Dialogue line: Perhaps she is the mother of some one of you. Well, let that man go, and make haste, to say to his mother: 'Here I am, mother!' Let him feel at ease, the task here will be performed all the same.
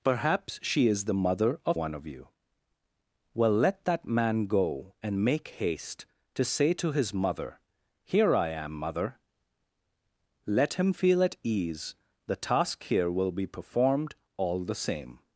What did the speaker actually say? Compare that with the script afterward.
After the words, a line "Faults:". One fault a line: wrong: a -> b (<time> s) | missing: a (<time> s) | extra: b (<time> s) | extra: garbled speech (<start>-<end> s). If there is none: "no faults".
Perhaps she is the mother of one of you. Well, let that man go, and make haste, to say to his mother: 'Here I am, mother!' Let him feel at ease, the task here will be performed all the same.
Faults:
missing: some (1.8 s)